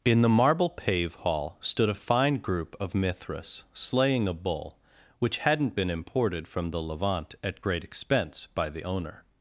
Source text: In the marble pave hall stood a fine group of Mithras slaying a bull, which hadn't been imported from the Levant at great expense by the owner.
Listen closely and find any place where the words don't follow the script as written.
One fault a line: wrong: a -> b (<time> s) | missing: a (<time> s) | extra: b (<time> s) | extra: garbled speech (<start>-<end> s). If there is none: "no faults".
no faults